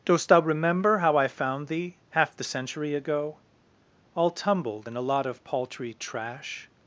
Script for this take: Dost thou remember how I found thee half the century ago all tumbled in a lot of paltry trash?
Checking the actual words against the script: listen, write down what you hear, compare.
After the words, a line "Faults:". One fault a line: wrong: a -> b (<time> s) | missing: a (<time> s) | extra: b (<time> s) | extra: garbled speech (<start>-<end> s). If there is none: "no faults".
Dost thou remember how I found thee half the century ago all tumbled in a lot of paltry trash?
Faults:
no faults